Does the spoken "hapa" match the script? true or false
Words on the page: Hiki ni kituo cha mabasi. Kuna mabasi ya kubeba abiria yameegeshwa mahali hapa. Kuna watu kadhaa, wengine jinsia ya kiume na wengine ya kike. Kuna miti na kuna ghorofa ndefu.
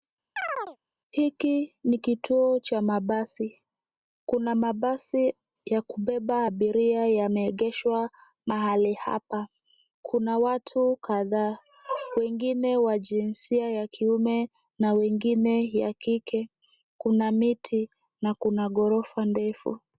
true